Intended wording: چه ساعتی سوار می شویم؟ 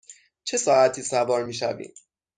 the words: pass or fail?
pass